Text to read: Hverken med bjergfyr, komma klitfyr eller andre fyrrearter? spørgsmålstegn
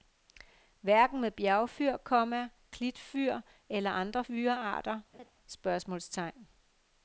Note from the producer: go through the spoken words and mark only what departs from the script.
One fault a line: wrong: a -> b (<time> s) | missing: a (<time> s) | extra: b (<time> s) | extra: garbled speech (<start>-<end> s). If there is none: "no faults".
no faults